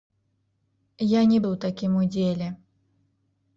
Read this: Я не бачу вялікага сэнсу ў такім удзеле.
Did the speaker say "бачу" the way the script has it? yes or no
no